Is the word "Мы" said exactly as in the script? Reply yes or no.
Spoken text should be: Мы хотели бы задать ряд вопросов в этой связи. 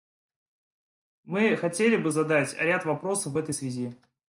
yes